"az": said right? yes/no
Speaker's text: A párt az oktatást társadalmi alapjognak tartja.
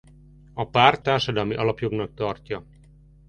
no